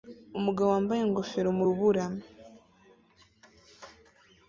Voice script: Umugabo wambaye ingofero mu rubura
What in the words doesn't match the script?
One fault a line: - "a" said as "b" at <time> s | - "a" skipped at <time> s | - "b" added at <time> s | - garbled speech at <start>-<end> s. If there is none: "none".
none